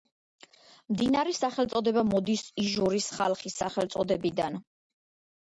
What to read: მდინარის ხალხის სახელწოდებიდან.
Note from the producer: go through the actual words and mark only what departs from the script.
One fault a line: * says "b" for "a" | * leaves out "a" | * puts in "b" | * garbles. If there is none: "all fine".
* puts in "სახელწოდება მოდის იჟორის"